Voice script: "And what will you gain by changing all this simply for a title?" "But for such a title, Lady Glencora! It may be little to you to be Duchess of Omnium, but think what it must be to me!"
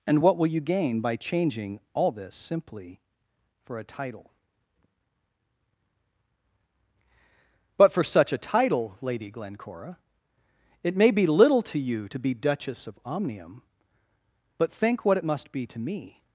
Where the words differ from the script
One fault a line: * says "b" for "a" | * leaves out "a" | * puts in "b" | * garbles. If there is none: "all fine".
all fine